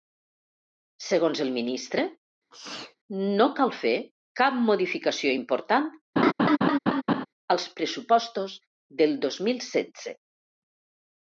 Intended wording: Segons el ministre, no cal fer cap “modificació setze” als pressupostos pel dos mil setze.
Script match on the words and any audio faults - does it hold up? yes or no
no